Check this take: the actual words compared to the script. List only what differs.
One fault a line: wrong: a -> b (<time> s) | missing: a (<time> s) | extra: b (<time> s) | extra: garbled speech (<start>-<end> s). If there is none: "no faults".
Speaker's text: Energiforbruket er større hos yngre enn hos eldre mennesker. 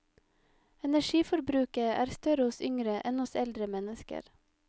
no faults